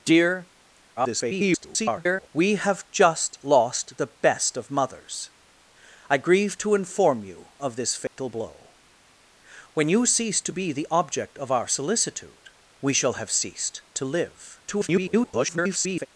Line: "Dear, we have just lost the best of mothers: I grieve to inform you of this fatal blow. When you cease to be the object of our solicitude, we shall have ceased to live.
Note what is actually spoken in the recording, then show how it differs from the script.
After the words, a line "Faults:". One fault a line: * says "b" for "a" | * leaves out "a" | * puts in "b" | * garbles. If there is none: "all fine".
"Dear, [garbled] we have just lost the best of mothers: I grieve to inform you of this fatal blow. When you cease to be the object of our solicitude, we shall have ceased to live. [garbled]
Faults:
* garbles
* garbles